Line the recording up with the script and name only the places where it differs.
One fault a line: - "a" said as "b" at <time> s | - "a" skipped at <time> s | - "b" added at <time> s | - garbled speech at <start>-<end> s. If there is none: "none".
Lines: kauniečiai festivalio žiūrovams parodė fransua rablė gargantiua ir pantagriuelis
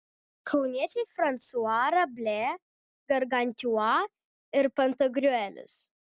- "festivalio žiūrovams parodė" skipped at 1.0 s